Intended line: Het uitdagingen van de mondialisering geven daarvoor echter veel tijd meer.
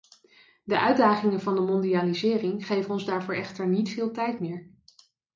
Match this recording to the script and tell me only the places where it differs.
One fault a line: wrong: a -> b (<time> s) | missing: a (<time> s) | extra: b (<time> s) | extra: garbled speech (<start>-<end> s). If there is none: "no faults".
wrong: Het -> De (0.6 s)
extra: ons (2.9 s)
extra: niet (3.7 s)